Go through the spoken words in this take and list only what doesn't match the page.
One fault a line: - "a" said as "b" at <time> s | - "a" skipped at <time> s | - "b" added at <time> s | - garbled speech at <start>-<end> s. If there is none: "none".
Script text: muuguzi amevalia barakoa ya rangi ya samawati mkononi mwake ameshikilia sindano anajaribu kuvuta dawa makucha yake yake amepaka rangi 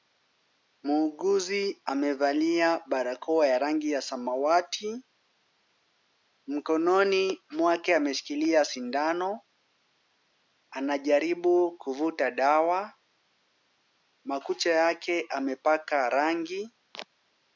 - "yake" skipped at 15.3 s